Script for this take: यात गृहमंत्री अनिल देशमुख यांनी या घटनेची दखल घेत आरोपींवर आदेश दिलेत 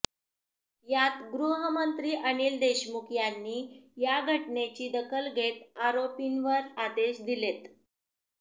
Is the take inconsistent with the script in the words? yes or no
no